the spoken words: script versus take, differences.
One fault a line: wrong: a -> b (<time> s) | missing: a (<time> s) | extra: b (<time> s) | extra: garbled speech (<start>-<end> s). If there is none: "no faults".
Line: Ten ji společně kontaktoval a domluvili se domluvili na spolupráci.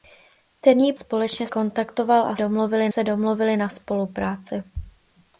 no faults